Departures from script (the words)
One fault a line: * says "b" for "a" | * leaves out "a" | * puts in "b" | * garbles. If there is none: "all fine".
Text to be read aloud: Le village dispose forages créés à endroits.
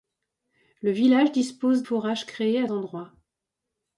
all fine